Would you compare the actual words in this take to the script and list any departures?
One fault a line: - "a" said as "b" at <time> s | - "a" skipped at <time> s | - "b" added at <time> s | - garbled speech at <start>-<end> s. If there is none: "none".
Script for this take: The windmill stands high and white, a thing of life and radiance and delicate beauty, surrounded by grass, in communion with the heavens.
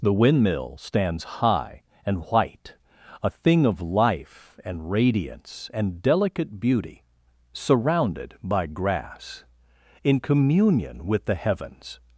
none